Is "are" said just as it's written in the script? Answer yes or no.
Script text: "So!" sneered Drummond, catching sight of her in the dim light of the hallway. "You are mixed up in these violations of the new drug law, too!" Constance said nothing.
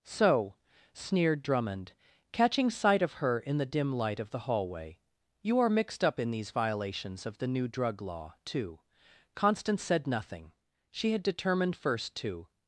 yes